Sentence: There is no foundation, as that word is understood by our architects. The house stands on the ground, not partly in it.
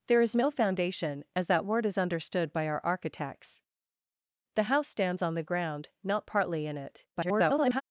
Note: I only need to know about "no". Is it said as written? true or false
true